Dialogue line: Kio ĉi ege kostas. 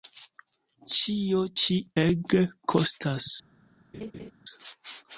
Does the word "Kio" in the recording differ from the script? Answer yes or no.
yes